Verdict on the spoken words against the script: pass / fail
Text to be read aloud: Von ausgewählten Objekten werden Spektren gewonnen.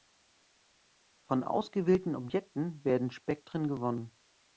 pass